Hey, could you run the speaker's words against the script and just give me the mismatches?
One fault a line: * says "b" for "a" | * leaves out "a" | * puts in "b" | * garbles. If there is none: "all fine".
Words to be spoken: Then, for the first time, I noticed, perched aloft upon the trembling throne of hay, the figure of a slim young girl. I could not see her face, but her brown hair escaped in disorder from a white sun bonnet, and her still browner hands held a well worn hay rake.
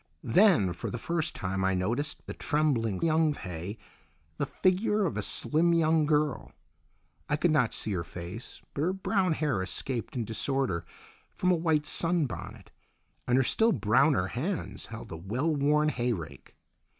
* leaves out "perched aloft upon"
* says "young" for "throne"